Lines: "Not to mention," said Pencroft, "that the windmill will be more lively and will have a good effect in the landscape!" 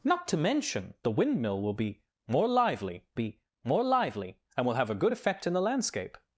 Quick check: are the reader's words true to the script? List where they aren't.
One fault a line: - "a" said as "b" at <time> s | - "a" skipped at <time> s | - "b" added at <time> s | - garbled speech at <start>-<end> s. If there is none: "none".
- "said Pencroft that the windmill will" said as "the windmill will be more lively" at 1.0 s